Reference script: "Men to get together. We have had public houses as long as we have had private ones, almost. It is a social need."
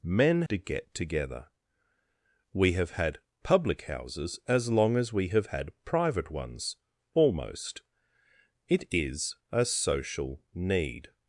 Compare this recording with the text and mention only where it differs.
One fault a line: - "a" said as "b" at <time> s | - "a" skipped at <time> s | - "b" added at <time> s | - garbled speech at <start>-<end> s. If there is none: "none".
none